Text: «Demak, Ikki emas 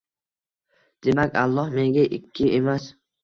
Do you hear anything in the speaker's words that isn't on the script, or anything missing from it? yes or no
yes